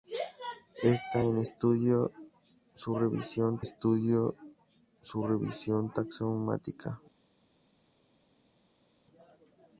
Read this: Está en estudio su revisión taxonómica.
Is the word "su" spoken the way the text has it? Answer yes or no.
yes